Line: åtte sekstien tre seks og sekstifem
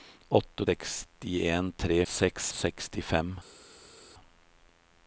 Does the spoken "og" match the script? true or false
true